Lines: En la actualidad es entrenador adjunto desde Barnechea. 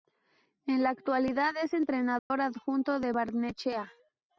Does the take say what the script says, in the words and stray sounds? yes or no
no